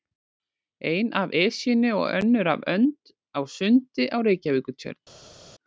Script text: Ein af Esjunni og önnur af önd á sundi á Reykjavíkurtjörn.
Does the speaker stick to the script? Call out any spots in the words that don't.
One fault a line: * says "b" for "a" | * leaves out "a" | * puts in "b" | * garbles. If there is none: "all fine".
all fine